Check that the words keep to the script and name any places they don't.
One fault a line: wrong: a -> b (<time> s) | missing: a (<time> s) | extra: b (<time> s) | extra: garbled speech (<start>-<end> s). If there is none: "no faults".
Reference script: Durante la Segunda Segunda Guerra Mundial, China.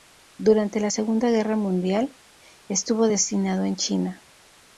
missing: Segunda (1.3 s)
extra: estuvo destinado en (2.7 s)